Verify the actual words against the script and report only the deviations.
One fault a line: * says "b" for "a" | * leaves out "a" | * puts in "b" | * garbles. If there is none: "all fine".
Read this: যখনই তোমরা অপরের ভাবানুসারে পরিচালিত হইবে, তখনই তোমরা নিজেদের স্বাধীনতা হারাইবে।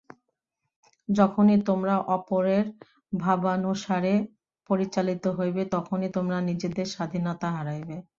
all fine